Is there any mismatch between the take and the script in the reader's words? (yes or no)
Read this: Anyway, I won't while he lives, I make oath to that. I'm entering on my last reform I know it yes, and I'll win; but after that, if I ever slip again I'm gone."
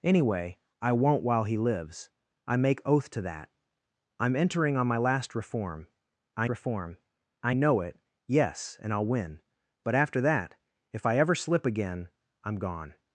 yes